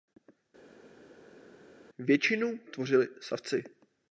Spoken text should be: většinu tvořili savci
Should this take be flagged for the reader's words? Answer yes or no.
no